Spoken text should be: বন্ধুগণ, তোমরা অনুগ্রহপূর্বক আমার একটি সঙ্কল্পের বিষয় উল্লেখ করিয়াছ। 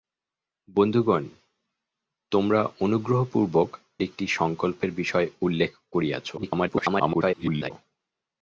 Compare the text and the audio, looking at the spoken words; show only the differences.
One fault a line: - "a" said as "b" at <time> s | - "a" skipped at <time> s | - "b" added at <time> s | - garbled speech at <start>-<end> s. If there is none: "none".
- "আমার" skipped at 3.7 s
- garbled speech at 6.4-7.7 s